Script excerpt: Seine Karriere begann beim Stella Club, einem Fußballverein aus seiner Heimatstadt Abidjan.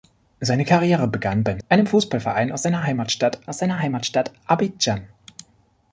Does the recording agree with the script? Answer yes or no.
no